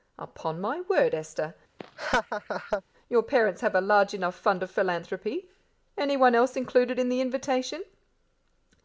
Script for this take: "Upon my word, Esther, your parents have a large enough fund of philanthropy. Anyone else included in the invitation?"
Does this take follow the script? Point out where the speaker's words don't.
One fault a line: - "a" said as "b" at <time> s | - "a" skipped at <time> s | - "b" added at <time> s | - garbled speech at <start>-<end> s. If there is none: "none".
none